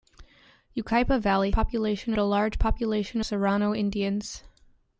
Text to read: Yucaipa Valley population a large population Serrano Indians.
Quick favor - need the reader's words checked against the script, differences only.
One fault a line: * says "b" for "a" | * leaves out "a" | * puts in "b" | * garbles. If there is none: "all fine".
all fine